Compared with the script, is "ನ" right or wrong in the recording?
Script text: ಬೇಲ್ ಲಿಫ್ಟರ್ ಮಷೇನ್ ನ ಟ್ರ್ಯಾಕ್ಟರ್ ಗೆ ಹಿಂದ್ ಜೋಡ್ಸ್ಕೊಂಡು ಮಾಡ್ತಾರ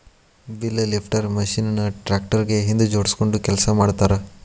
right